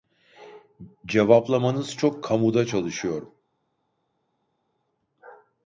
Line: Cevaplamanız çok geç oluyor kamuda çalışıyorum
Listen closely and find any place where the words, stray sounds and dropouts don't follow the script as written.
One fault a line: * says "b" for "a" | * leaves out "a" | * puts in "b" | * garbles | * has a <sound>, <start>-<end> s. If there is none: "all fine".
* leaves out "geç oluyor"